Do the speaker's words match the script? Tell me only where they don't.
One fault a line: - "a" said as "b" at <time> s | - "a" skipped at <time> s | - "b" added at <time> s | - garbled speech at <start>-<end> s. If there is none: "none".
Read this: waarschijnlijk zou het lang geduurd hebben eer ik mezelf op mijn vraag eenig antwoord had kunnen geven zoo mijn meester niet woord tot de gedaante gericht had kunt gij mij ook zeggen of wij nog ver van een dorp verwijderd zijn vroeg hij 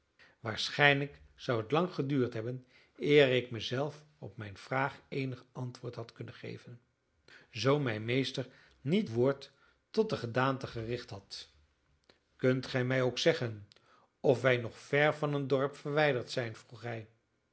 none